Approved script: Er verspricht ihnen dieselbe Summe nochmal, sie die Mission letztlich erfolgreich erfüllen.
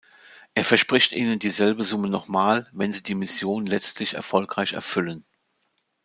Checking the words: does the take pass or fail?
fail